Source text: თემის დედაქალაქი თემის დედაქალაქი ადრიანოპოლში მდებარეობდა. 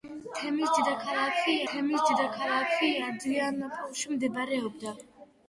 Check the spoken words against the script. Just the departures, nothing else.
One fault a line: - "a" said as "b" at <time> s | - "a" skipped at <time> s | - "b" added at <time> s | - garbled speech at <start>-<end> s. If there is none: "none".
none